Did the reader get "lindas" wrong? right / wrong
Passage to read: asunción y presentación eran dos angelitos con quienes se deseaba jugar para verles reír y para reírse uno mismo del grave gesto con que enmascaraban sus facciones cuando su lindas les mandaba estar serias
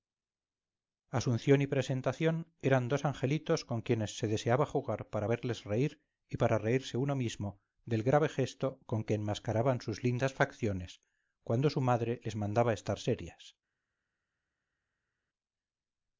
wrong